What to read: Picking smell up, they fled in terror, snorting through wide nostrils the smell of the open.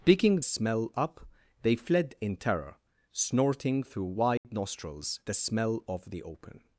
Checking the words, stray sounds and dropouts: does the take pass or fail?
fail